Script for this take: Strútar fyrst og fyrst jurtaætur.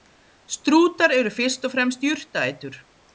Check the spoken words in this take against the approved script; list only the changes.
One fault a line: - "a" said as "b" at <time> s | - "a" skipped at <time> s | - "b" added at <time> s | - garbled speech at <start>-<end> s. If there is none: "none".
- "eru" added at 1.2 s
- "fyrst" said as "fremst" at 1.8 s